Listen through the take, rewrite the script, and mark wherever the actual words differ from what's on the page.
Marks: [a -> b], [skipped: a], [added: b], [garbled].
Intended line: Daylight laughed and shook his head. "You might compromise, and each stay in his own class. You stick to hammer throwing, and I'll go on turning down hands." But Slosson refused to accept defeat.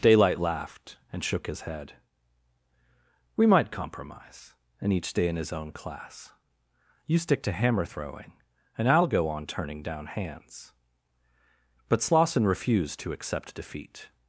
Daylight laughed and shook his head. ["You -> We] might compromise, and each stay in his own class. You stick to hammer throwing, and I'll go on turning down hands." But Slosson refused to accept defeat.